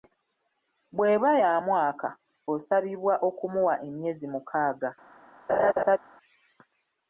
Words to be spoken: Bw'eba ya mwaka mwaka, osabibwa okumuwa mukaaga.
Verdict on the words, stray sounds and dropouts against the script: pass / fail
fail